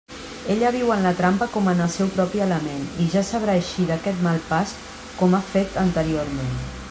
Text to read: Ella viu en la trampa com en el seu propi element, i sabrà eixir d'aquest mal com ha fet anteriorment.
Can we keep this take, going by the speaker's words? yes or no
no